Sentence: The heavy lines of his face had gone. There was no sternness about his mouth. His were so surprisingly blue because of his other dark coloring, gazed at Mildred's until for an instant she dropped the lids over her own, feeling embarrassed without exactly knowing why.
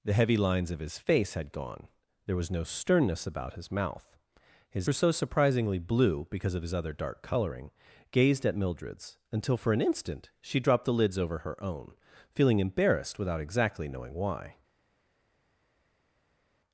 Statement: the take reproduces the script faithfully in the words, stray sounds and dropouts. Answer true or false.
true